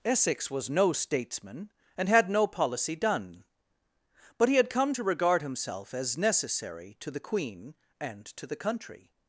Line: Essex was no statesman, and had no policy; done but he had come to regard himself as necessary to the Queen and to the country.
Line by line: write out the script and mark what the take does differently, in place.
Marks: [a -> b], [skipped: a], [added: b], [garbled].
Essex was no statesman, and had no policy; done but he had come to regard himself as necessary to the Queen and to the country.